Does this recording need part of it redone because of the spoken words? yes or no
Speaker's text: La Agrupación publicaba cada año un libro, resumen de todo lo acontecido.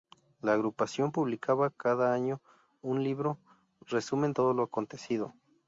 yes